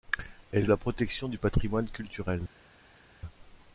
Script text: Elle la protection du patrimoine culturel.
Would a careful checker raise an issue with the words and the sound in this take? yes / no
no